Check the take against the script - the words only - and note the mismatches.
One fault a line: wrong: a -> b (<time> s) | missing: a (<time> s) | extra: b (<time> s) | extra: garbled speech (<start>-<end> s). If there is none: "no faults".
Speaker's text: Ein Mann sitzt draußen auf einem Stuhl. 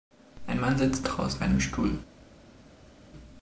missing: auf (1.4 s)